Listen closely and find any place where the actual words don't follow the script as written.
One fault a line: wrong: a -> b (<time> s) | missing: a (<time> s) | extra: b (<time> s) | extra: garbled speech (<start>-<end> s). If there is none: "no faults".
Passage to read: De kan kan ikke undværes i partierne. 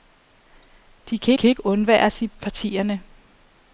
no faults